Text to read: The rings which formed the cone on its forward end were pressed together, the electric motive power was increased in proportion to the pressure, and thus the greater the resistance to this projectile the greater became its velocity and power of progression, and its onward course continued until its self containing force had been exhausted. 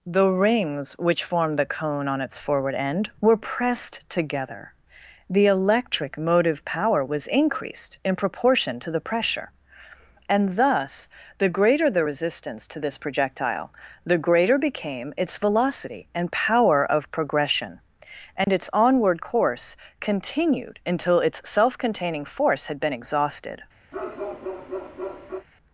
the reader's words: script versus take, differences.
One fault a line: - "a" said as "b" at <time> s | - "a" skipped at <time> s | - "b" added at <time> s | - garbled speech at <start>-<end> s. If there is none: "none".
none